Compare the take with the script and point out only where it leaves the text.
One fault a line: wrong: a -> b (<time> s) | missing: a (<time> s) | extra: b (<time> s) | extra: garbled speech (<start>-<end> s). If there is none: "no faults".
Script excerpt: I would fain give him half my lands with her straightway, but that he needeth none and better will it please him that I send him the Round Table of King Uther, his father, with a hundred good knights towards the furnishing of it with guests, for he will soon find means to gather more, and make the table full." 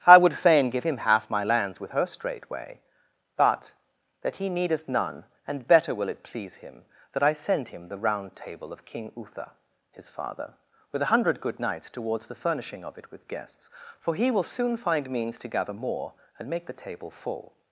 no faults